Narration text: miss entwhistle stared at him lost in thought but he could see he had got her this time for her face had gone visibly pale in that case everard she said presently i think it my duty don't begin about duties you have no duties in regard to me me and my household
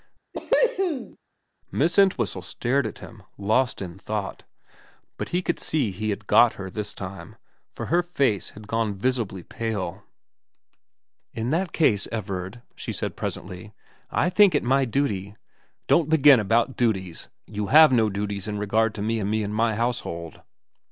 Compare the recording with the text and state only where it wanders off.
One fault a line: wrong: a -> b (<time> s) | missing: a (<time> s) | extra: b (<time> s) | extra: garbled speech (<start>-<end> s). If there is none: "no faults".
no faults